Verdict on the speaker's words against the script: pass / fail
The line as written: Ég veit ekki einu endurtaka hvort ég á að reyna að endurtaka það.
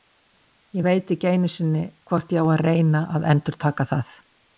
fail